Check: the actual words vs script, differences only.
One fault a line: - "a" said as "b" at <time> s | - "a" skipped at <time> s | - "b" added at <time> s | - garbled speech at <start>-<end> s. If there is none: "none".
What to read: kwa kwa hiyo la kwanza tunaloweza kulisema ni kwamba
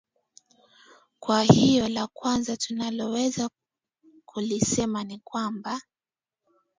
- "kwa" skipped at 1.4 s